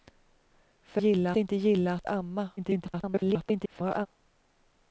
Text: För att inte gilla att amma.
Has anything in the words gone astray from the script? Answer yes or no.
yes